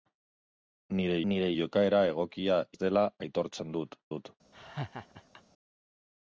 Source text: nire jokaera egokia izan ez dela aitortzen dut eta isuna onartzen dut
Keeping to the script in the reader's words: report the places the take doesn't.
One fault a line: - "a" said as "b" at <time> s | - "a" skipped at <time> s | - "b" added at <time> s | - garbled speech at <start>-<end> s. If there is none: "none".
- "nire" added at 1.3 s
- "izan" skipped at 2.6 s
- "eta isuna onartzen" skipped at 4.0 s